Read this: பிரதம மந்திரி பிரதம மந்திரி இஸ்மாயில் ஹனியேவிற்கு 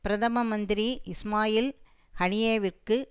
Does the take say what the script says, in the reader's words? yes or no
no